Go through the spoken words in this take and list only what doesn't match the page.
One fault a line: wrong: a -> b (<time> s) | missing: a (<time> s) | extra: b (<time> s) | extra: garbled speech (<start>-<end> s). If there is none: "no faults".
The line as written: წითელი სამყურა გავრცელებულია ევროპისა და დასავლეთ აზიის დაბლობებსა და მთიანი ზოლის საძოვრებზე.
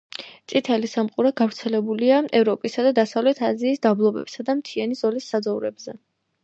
no faults